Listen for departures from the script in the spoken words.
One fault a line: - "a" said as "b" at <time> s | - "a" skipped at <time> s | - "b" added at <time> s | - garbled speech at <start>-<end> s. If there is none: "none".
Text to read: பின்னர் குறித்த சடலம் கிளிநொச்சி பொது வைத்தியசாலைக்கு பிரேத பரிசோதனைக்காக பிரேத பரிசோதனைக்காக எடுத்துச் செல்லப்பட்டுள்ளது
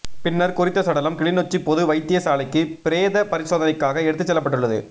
- "பிரேத பரிசோதனைக்காக" skipped at 4.1 s